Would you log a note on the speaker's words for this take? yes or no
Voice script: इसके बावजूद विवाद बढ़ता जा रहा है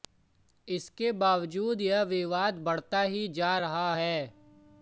yes